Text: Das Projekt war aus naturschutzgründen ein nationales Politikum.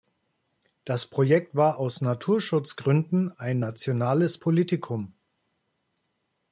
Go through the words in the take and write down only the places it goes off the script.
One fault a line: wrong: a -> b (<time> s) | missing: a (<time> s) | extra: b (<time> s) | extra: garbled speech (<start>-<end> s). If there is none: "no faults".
no faults